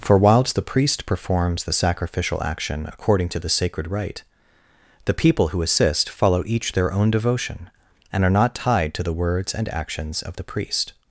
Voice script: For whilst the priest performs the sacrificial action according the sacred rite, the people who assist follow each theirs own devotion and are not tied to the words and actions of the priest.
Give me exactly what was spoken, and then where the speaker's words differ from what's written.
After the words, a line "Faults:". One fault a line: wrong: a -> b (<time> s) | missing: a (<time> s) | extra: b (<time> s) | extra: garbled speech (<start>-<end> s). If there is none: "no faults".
For whilst the priest performs the sacrificial action according to the sacred rite, the people who assist follow each their own devotion and are not tied to the words and actions of the priest.
Faults:
extra: to (3.3 s)
wrong: theirs -> their (6.7 s)